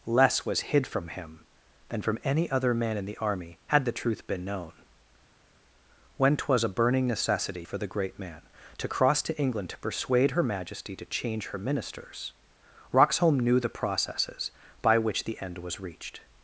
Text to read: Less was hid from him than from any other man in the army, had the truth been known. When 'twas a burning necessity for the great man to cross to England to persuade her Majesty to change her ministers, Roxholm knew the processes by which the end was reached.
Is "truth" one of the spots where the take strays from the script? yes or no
no